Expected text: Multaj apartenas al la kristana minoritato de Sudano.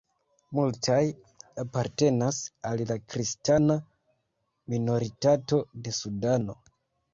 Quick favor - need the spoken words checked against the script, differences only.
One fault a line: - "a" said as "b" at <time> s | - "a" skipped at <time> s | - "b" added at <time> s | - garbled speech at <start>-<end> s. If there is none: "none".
none